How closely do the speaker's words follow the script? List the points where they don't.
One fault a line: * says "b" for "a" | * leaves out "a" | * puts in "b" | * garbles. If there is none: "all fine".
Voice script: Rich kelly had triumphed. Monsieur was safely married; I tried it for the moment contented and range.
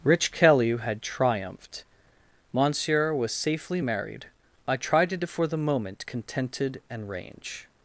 all fine